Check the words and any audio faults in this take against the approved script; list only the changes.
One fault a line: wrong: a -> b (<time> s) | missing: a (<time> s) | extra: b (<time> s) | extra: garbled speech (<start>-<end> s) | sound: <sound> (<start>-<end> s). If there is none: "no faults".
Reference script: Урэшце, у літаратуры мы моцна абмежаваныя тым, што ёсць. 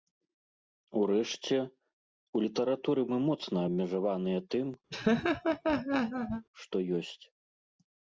sound: laugh (4.9-6.5 s)